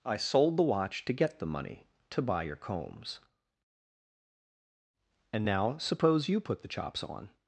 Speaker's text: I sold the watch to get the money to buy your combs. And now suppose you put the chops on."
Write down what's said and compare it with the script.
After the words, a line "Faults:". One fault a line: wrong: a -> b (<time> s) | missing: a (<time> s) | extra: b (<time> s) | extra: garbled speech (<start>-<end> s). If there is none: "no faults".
I sold the watch to get the money to buy your combs. And now suppose you put the chops on."
Faults:
no faults